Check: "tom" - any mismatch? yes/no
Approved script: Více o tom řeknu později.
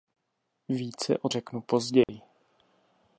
yes